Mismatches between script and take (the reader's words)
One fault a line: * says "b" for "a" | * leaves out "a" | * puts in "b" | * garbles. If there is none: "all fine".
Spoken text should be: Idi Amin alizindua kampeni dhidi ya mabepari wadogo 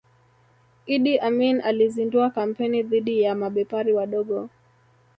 all fine